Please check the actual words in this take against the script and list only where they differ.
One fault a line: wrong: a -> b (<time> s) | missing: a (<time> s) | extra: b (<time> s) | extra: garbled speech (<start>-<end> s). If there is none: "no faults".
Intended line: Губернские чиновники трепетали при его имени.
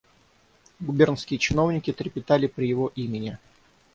no faults